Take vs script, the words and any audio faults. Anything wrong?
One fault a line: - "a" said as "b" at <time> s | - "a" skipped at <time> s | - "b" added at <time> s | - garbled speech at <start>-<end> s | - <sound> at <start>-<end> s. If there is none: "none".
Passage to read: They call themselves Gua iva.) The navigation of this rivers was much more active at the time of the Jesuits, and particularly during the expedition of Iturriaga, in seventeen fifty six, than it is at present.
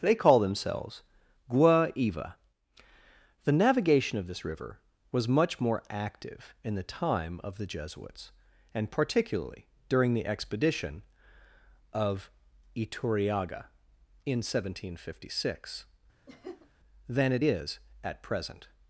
- "rivers" said as "river" at 4.4 s
- "at" said as "in" at 6.6 s
- laugh at 16.3-16.7 s